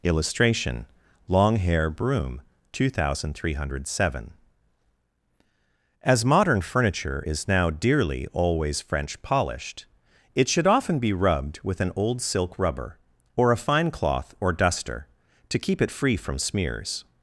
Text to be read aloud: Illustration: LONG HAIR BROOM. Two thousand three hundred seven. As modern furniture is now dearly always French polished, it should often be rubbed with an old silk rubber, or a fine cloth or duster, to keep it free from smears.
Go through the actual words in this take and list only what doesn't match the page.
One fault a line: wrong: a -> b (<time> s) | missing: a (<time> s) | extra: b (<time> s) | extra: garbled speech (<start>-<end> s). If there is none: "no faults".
no faults